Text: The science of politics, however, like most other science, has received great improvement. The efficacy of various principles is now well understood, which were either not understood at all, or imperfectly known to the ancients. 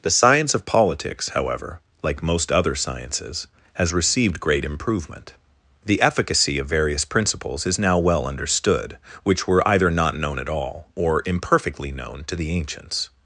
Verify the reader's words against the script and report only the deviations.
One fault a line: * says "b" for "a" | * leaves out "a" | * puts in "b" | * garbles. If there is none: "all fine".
* says "sciences" for "science"
* says "known" for "understood"